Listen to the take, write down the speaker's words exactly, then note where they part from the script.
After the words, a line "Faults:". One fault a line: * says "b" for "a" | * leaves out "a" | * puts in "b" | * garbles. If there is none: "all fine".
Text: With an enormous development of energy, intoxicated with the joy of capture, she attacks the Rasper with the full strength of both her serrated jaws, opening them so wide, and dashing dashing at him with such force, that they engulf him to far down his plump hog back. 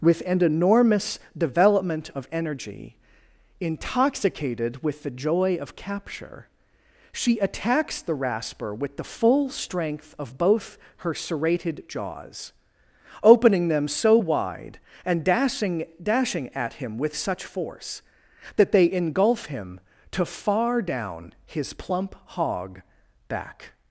With an enormous development of energy, intoxicated with the joy of capture, she attacks the Rasper with the full strength of both her serrated jaws, opening them so wide, and dashing dashing at him with such force, that they engulf him to far down his plump hog back.
Faults:
all fine